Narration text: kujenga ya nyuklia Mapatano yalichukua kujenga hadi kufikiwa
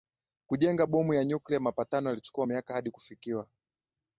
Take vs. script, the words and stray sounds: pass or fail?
fail